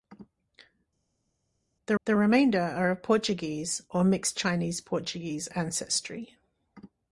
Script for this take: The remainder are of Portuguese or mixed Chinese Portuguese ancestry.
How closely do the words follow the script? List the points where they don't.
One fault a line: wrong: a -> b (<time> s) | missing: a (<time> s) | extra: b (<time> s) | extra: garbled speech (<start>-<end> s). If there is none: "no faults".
extra: the (2.0 s)